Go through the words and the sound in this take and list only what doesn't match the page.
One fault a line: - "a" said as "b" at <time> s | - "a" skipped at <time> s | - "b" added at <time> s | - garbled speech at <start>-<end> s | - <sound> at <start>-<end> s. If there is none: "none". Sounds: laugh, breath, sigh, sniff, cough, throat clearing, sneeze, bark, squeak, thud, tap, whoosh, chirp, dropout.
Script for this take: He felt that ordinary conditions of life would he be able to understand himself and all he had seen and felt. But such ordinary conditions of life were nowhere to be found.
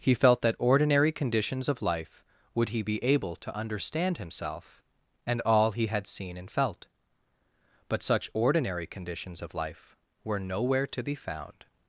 none